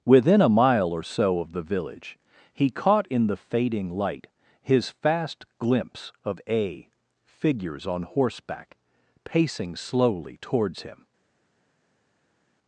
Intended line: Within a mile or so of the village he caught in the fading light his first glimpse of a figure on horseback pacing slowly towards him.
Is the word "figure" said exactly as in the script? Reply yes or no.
no